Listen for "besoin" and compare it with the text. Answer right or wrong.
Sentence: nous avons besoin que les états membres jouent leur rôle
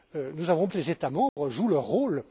wrong